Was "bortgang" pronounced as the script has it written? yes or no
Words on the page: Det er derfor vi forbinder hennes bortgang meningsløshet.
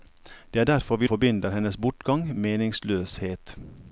yes